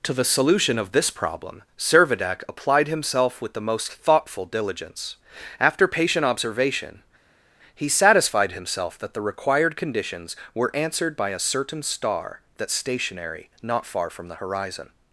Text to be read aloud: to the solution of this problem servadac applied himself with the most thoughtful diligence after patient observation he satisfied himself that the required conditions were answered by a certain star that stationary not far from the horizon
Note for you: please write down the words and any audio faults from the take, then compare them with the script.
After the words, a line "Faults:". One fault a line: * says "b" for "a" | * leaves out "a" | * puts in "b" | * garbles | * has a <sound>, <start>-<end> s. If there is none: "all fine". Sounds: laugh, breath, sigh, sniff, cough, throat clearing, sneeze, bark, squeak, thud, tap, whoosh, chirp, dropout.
to the solution of this problem servadac applied himself with the most thoughtful diligence after patient observation he satisfied himself that the required conditions were answered by a certain star that stationary not far from the horizon
Faults:
all fine